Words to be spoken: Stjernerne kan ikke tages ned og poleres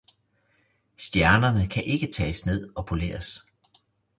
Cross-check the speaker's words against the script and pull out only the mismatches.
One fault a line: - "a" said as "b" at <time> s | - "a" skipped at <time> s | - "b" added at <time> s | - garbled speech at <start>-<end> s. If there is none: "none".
none